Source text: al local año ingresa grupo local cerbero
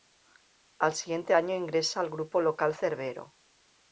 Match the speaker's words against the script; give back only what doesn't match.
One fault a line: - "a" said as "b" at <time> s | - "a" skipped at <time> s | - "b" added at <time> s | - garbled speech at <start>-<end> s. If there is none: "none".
- "local" said as "siguiente" at 0.9 s
- "al" added at 2.0 s